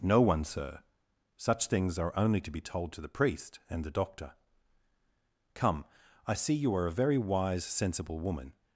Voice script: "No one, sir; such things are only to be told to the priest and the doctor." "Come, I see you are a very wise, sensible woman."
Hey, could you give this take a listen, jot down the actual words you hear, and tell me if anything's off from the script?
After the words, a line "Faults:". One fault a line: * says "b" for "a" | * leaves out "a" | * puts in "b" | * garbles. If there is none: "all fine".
"No one, sir; such things are only to be told to the priest and the doctor." "Come, I see you are a very wise, sensible woman."
Faults:
all fine